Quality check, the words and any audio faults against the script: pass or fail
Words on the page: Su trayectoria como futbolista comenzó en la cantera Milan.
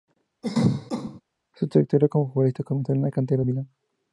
fail